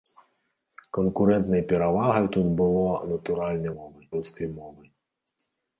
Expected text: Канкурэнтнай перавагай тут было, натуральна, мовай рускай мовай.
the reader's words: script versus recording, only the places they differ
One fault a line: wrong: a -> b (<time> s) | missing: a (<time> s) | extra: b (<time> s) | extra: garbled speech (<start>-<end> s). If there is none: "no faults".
no faults